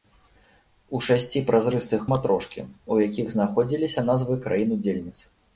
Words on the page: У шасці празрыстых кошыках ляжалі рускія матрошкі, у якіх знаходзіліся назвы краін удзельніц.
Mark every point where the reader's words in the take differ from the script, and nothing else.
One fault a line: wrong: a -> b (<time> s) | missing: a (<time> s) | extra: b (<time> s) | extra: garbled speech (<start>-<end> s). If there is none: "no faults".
missing: кошыках ляжалі рускія (2.0 s)